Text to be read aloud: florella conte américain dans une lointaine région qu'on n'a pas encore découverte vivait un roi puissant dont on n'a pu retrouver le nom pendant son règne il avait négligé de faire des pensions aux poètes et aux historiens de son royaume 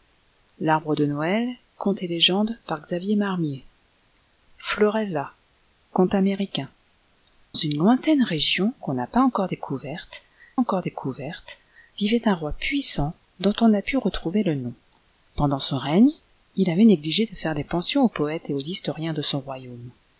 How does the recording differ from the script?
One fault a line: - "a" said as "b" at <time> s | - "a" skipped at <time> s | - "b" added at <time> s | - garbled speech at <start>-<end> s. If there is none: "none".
- "dans" skipped at 6.7 s
- "encore découverte" added at 10.6 s